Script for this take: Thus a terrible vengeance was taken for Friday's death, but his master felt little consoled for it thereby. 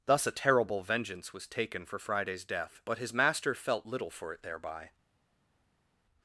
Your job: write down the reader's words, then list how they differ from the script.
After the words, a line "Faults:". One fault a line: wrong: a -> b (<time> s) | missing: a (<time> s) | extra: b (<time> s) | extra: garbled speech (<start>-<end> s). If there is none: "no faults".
Thus a terrible vengeance was taken for Friday's death, but his master felt little for it thereby.
Faults:
missing: consoled (4.1 s)